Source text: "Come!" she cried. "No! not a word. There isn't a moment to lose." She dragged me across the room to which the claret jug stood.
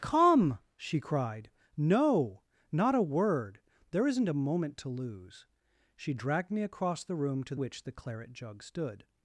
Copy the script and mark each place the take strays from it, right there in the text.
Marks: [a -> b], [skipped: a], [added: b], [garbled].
"Come!" she cried. "No! not a word. There isn't a moment to lose." She dragged me across the room to which the claret jug stood.